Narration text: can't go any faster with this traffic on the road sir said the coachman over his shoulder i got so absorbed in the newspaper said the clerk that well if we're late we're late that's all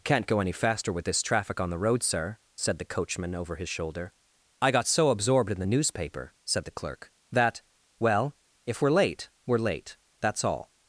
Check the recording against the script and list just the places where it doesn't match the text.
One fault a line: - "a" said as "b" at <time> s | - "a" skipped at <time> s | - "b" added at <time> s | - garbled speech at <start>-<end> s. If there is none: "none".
none